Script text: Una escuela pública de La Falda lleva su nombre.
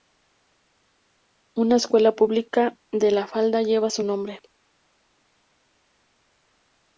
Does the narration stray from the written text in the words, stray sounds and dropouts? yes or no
no